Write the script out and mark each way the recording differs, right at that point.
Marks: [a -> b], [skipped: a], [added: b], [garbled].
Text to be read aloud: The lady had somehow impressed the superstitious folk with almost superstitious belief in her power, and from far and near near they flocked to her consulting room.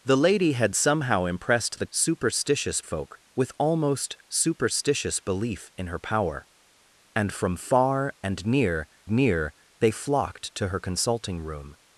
The lady had somehow impressed the superstitious folk with almost superstitious belief in her power, and from far and near near they flocked to her consulting room.